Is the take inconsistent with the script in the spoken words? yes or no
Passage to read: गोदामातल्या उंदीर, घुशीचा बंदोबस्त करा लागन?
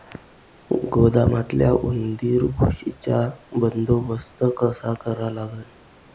yes